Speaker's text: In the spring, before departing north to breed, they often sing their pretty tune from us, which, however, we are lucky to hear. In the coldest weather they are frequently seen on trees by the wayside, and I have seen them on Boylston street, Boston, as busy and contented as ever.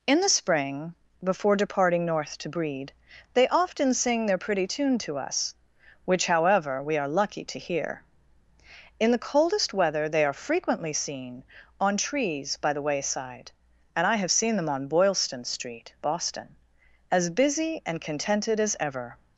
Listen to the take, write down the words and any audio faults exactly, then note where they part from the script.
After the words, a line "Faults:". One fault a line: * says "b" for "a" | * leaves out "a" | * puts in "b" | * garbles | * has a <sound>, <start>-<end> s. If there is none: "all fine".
In the spring, before departing north to breed, they often sing their pretty tune to us, which, however, we are lucky to hear. In the coldest weather they are frequently seen on trees by the wayside, and I have seen them on Boylston street, Boston, as busy and contented as ever.
Faults:
* says "to" for "from"